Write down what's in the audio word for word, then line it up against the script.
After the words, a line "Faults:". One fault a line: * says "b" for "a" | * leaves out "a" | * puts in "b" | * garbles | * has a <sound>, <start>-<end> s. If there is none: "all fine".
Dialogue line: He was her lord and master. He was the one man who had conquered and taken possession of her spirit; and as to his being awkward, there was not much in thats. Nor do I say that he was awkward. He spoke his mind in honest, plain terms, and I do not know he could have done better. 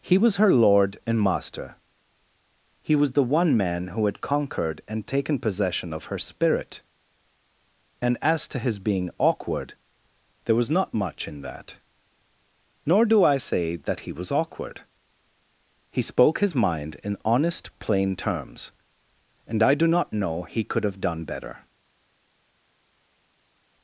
He was her lord and master. He was the one man who had conquered and taken possession of her spirit; and as to his being awkward, there was not much in that. Nor do I say that he was awkward. He spoke his mind in honest, plain terms, and I do not know he could have done better.
Faults:
* says "that" for "thats"